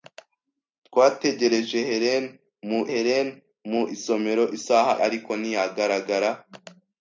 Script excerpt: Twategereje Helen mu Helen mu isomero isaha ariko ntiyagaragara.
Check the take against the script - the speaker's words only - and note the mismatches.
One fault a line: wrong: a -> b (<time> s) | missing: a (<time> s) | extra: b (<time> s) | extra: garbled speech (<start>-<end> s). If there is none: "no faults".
no faults